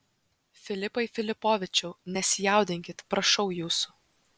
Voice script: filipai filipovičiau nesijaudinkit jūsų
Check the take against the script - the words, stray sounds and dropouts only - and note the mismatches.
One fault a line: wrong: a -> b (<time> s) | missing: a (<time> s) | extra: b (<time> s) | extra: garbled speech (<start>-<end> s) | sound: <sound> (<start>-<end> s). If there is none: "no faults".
extra: prašau (3.1 s)